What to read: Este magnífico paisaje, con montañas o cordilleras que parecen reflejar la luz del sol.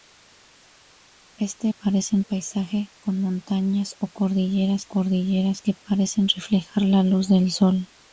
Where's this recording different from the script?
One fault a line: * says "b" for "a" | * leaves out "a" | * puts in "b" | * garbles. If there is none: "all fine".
* says "parecen" for "magnífico"
* puts in "cordilleras"